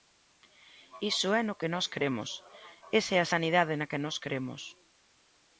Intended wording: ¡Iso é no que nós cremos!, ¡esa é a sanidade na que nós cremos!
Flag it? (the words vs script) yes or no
no